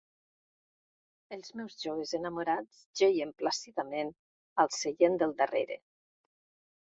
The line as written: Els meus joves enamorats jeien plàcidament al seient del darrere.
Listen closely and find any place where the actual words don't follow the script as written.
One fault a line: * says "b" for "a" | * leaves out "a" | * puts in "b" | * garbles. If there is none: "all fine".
all fine